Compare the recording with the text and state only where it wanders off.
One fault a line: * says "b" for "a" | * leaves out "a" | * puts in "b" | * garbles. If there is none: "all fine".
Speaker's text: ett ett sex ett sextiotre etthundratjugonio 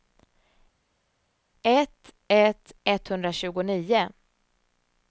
* leaves out "sex ett sextiotre"